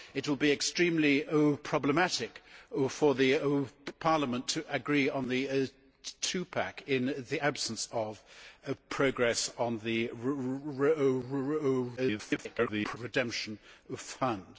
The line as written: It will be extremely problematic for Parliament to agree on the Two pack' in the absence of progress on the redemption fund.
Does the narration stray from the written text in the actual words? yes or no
yes